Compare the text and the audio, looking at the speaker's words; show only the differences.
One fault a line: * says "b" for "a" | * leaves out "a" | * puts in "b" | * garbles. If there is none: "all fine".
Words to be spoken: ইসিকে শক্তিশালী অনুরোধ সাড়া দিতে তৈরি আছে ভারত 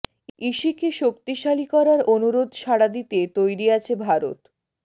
* puts in "করার"